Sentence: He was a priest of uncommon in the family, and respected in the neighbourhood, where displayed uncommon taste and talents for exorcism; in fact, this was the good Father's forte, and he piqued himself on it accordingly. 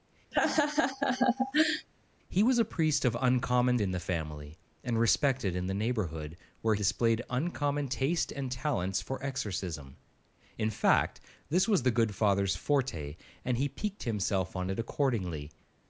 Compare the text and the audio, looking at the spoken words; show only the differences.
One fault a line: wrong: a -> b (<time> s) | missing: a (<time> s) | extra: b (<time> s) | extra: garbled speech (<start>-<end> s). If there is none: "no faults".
no faults